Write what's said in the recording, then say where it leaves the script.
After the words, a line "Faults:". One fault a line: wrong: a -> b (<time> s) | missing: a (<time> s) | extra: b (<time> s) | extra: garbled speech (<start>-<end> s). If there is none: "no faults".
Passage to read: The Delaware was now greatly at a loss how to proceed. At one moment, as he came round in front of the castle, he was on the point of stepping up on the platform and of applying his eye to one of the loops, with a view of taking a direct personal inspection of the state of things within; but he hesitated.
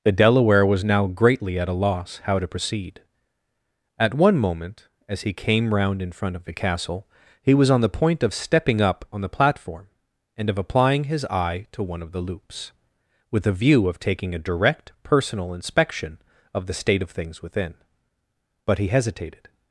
The Delaware was now greatly at a loss how to proceed. At one moment, as he came round in front of the castle, he was on the point of stepping up on the platform and of applying his eye to one of the loops, with a view of taking a direct personal inspection of the state of things within; but he hesitated.
Faults:
no faults